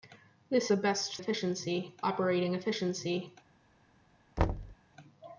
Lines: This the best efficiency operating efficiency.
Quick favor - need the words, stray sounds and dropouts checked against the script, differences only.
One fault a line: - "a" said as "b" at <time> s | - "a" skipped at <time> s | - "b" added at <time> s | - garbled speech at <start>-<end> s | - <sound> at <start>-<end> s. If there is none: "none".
- thud at 4.4-4.8 s